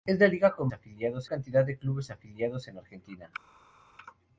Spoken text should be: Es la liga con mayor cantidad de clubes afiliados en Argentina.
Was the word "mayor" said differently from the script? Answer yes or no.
yes